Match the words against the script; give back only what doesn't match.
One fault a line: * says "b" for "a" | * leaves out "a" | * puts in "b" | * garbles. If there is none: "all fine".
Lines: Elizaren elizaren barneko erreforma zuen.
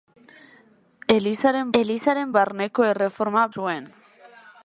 all fine